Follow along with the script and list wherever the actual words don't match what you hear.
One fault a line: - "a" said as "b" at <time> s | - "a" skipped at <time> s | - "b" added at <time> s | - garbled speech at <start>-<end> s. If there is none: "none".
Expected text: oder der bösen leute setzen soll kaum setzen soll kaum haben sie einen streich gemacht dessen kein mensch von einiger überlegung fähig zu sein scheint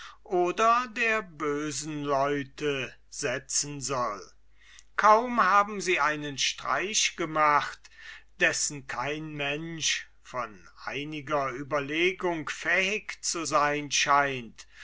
- "setzen soll kaum" skipped at 5.4 s